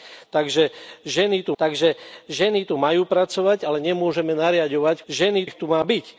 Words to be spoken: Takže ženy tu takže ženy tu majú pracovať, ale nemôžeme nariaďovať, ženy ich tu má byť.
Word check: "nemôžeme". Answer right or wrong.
right